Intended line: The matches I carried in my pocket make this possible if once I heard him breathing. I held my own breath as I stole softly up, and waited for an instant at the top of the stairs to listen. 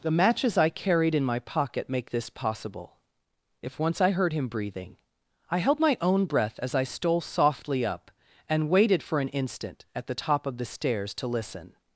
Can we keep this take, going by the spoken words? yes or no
yes